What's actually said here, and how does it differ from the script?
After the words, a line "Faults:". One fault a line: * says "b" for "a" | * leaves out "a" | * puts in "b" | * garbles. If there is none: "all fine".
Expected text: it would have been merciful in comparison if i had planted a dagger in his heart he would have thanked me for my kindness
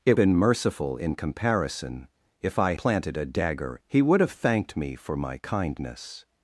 it been merciful in comparison if i planted a dagger he would have thanked me for my kindness
Faults:
* leaves out "would have"
* leaves out "had"
* leaves out "in his heart"